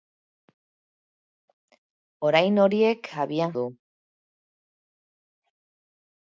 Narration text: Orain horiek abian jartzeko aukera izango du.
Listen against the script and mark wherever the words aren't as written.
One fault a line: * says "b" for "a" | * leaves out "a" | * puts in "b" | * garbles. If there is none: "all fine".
* leaves out "jartzeko aukera izango"